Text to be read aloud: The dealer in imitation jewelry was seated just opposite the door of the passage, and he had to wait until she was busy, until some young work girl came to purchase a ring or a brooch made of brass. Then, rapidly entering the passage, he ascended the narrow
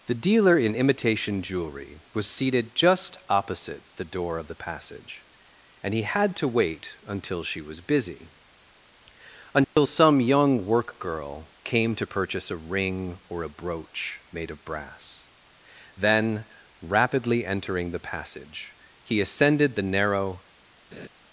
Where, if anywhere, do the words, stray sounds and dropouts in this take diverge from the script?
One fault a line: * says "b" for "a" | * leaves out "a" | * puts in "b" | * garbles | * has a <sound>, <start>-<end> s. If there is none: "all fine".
* has a dropout, 9.6-9.8 s
* has a laugh, 20.9-21.1 s